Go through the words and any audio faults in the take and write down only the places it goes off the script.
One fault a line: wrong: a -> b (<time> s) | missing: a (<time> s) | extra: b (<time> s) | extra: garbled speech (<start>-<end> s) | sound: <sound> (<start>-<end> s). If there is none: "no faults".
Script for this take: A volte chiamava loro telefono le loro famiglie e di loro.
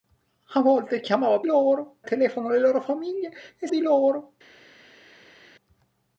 no faults